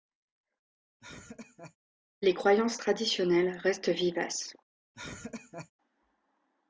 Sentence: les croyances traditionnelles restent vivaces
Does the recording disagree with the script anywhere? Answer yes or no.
no